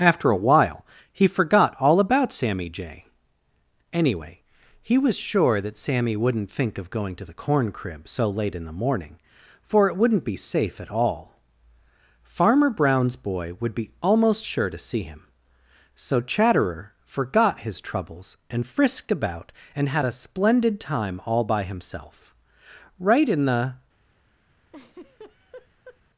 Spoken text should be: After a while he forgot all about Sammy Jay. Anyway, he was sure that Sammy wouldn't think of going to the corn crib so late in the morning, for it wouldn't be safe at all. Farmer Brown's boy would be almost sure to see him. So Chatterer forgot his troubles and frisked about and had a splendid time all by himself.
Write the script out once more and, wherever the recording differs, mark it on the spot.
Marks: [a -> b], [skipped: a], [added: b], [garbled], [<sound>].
After a while he forgot all about Sammy Jay. Anyway, he was sure that Sammy wouldn't think of going to the corn crib so late in the morning, for it wouldn't be safe at all. Farmer Brown's boy would be almost sure to see him. So Chatterer forgot his troubles and frisked about and had a splendid time all by himself. [added: Right in the] [laugh]